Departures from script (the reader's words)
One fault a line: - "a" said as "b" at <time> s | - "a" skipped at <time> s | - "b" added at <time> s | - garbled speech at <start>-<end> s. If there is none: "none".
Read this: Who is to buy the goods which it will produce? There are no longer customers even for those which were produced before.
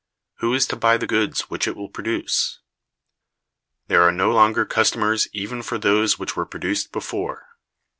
none